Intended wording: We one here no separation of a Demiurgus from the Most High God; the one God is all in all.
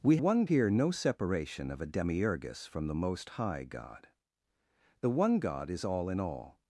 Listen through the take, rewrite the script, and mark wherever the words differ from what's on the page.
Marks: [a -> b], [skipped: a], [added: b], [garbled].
We one here no separation of a Demiurgus from the Most High God; the one God is all in all.